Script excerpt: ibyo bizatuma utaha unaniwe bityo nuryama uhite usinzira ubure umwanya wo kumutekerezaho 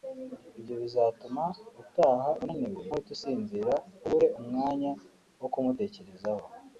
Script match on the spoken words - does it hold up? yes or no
no